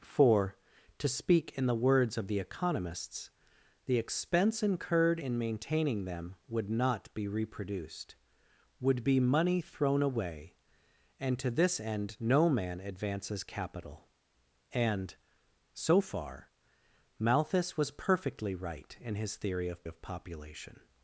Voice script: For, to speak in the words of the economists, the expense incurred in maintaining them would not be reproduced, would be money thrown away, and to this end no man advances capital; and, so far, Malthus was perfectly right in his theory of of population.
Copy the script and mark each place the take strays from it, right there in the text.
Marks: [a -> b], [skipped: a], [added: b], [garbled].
For, to speak in the words of the economists, the expense incurred in maintaining them would not be reproduced, would be money thrown away, and to this end no man advances capital; and, so far, Malthus was perfectly right in his theory of of population.